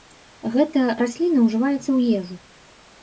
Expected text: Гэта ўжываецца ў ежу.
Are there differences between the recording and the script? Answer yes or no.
yes